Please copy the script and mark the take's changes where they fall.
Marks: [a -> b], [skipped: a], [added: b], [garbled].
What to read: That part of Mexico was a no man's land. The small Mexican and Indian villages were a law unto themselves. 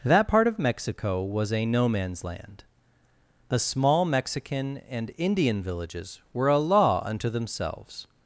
That part of Mexico was a no man's land. The small Mexican and Indian villages were a law unto themselves.